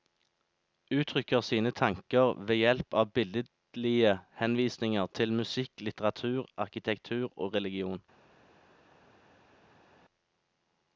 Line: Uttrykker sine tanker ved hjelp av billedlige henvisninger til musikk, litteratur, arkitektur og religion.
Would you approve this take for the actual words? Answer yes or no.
yes